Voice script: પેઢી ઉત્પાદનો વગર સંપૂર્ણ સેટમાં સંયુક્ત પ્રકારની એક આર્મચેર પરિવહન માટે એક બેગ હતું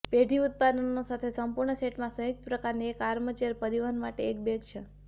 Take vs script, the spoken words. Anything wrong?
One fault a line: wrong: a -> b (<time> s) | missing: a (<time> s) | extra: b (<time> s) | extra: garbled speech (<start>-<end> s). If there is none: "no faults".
wrong: વગર -> સાથે (1.1 s)
wrong: હતું -> છે (4.7 s)